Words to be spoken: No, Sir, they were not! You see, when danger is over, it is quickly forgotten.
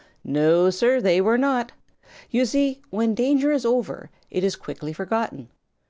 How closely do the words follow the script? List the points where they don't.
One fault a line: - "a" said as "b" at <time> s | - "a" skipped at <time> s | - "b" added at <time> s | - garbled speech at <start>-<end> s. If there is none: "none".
none